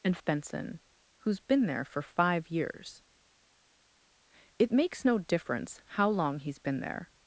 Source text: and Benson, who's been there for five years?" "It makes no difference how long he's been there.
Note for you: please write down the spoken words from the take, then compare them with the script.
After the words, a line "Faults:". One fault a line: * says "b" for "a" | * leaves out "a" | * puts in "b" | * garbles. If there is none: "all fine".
and Benson, who's been there for five years?" "It makes no difference how long he's been there.
Faults:
all fine